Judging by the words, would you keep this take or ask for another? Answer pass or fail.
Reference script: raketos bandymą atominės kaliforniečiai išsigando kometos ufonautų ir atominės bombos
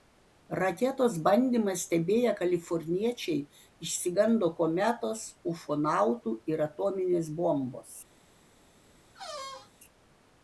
fail